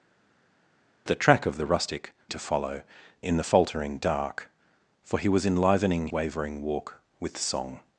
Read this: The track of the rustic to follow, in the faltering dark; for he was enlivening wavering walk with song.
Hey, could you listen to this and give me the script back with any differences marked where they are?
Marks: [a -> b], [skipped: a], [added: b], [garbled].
The track of the rustic to follow, in the faltering dark; for he was enlivening wavering walk with song.